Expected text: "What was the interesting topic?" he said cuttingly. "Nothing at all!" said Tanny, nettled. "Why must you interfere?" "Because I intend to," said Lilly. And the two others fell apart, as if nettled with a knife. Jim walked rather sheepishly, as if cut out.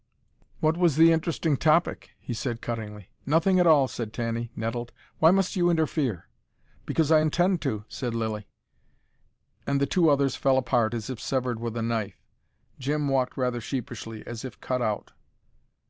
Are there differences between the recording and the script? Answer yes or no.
yes